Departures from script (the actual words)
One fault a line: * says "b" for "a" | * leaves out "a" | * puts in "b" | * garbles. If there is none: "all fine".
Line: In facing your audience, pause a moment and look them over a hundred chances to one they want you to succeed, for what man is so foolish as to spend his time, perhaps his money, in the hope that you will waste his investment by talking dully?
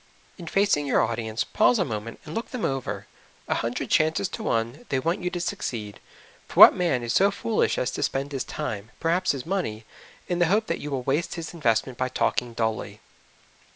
all fine